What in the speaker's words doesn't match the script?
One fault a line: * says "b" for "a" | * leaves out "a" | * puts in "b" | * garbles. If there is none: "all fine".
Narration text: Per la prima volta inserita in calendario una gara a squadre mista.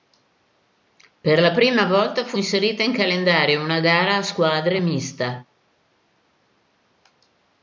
* puts in "fu"